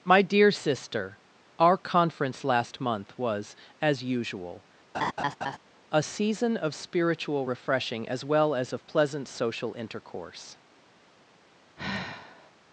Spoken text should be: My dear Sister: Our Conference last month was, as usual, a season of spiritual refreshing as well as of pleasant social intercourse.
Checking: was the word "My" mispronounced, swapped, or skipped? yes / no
no